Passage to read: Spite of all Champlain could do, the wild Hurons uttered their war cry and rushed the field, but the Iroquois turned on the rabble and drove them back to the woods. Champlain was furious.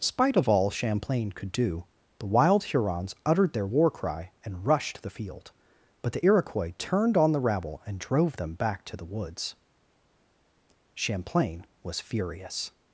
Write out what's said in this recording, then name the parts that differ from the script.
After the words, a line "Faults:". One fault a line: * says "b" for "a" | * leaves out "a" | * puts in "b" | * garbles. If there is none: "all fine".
Spite of all Champlain could do, the wild Hurons uttered their war cry and rushed the field, but the Iroquois turned on the rabble and drove them back to the woods. Champlain was furious.
Faults:
all fine